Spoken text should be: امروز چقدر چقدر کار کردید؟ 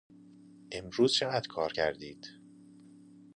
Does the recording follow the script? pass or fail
fail